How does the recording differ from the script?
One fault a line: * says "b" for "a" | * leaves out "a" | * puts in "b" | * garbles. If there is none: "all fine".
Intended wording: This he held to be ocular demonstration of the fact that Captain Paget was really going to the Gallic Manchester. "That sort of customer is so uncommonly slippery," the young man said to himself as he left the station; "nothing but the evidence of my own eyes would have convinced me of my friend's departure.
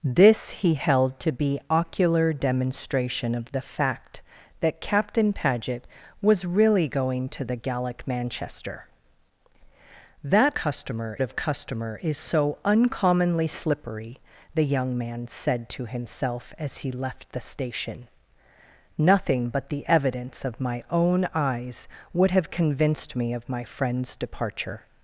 * says "customer" for "sort"